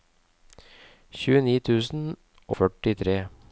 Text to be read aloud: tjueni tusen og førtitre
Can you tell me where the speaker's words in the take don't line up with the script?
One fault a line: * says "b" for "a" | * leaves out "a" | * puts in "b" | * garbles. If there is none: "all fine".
* leaves out "og"